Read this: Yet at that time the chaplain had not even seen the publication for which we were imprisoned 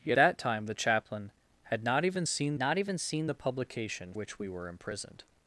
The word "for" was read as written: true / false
false